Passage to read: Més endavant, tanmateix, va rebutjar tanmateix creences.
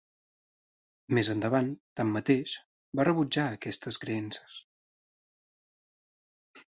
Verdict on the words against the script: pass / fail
fail